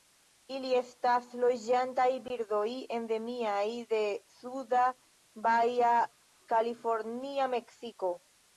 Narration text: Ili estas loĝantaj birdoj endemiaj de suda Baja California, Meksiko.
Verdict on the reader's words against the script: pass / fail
pass